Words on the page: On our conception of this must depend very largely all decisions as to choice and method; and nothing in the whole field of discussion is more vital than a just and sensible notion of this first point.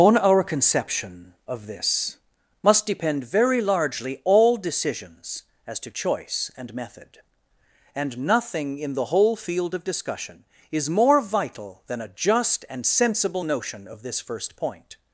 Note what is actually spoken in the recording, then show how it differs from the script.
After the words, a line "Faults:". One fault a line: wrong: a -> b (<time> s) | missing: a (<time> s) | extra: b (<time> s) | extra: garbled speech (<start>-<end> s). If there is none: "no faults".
On our conception of this must depend very largely all decisions as to choice and method; and nothing in the whole field of discussion is more vital than a just and sensible notion of this first point.
Faults:
no faults